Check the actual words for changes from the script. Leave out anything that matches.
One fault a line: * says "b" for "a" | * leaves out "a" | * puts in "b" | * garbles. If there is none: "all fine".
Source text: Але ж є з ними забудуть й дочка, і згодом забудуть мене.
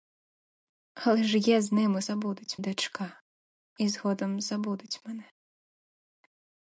all fine